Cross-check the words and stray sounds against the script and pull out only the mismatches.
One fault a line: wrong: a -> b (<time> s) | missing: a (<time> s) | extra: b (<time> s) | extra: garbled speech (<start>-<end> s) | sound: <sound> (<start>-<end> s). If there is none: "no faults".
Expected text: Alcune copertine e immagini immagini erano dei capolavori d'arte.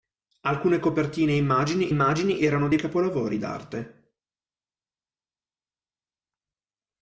no faults